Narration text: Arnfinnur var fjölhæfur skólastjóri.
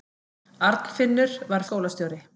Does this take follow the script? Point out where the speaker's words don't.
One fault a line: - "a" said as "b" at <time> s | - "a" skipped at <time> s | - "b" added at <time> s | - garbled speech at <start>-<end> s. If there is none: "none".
- "fjölhæfur" skipped at 1.6 s